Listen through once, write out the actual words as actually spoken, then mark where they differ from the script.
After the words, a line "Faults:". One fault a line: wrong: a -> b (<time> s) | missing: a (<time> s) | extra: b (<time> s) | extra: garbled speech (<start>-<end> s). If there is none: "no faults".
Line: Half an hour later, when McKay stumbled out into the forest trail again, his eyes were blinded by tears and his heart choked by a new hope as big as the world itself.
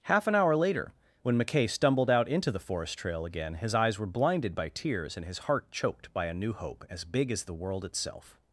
Half an hour later, when McKay stumbled out into the forest trail again, his eyes were blinded by tears and his heart choked by a new hope as big as the world itself.
Faults:
no faults